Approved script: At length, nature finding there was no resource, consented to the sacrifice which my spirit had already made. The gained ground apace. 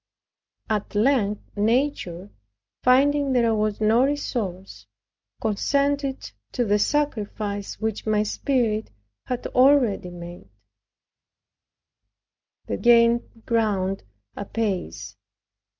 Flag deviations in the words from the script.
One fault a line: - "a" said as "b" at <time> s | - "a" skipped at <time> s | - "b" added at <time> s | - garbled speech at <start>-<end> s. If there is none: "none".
none